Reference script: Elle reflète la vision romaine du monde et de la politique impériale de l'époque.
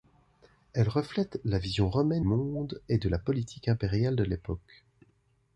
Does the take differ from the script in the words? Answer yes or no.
yes